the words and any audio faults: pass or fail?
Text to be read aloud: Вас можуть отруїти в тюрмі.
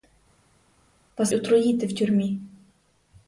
fail